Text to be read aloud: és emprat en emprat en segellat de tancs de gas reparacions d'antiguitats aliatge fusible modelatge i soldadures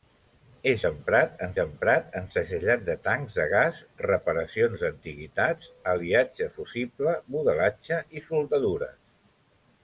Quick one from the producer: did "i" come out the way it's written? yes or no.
yes